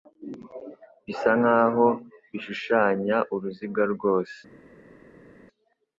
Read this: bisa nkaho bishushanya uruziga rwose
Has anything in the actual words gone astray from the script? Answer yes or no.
no